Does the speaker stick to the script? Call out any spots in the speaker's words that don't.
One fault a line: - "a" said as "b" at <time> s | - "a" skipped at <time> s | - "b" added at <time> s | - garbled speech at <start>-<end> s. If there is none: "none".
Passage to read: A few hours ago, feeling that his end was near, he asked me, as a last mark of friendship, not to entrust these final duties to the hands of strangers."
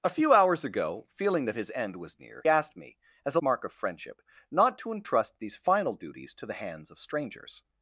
- "he" skipped at 2.4 s
- "last" skipped at 3.4 s